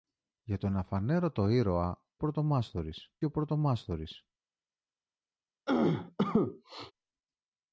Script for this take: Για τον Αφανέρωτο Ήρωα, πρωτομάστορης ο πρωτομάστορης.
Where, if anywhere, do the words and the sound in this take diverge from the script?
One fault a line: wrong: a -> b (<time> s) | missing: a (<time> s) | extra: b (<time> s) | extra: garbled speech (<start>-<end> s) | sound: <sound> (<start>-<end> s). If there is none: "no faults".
sound: cough (5.7-6.9 s)